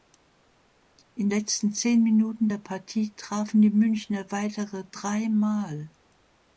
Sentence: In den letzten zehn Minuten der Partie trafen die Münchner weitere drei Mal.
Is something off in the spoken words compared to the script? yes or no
yes